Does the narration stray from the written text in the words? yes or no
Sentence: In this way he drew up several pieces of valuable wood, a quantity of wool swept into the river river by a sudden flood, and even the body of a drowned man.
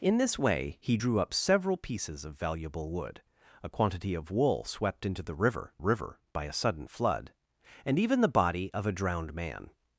no